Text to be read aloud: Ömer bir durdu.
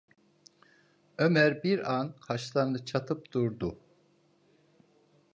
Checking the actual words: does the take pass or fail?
fail